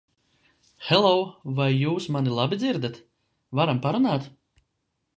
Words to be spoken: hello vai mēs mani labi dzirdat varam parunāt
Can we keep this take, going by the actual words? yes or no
no